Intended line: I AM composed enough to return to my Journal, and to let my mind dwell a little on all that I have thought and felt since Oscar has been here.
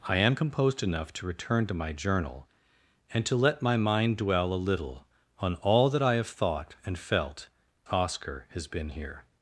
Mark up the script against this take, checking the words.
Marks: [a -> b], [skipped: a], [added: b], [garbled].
I AM composed enough to return to my Journal, and to let my mind dwell a little on all that I have thought and felt [skipped: since] Oscar has been here.